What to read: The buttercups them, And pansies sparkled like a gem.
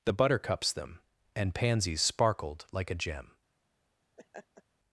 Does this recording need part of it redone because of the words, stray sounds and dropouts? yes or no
yes